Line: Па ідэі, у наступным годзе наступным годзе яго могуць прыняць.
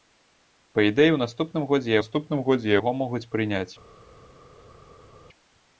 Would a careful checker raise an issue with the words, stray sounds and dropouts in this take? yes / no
no